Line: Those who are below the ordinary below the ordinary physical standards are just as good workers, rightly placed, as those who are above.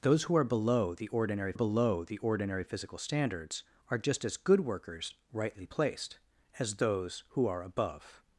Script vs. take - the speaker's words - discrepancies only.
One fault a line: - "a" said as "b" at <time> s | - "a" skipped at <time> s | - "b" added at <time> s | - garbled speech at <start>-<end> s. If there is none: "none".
none